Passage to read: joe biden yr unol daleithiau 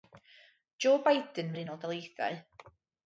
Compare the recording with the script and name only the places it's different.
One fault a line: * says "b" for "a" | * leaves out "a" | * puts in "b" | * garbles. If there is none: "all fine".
all fine